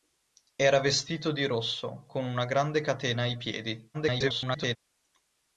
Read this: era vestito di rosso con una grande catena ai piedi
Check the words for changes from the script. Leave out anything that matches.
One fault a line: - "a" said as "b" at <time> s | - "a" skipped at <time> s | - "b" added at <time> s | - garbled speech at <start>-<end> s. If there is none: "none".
- garbled speech at 3.9-4.8 s